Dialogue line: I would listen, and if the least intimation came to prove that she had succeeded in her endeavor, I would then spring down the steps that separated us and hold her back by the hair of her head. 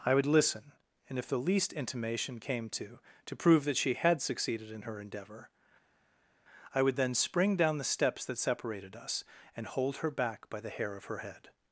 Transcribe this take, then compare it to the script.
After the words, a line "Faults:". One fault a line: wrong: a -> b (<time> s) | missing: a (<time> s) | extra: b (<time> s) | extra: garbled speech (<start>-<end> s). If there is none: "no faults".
I would listen, and if the least intimation came to to prove that she had succeeded in her endeavor, I would then spring down the steps that separated us and hold her back by the hair of her head.
Faults:
extra: to (3.3 s)